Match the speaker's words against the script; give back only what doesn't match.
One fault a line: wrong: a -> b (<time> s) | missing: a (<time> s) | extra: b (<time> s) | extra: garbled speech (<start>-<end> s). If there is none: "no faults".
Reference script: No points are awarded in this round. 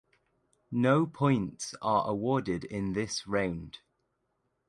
no faults